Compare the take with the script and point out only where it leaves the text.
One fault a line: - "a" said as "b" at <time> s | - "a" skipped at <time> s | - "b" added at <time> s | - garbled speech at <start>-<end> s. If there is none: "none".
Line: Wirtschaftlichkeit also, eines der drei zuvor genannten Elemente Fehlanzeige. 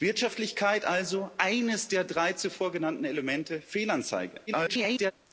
- garbled speech at 4.5-5.1 s